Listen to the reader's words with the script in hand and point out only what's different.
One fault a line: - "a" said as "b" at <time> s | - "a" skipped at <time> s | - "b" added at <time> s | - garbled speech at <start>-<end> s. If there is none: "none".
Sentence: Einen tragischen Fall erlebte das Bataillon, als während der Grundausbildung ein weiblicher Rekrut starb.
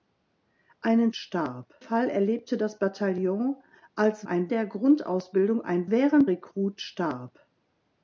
- "tragischen" said as "starb" at 1.1 s
- "während" said as "ein" at 4.2 s
- "weiblicher" said as "während" at 5.9 s